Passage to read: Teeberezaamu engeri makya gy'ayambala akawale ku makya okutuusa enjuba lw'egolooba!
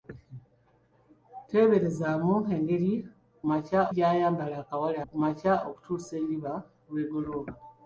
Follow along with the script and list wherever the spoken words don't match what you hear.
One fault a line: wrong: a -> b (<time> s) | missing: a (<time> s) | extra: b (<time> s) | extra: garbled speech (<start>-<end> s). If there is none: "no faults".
no faults